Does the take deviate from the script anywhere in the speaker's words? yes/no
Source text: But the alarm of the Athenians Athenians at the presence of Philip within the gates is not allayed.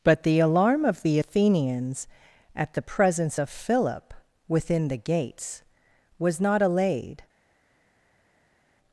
yes